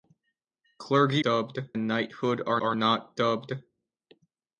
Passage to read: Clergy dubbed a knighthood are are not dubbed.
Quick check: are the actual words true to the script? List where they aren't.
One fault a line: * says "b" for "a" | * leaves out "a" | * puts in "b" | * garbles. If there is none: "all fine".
all fine